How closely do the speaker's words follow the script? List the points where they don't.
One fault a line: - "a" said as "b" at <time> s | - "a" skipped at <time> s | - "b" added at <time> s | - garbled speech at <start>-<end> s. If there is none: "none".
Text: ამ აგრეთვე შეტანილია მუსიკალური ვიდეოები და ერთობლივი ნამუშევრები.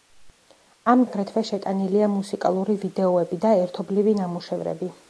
none